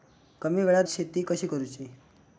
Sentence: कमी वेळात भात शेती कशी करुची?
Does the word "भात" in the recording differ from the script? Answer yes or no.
yes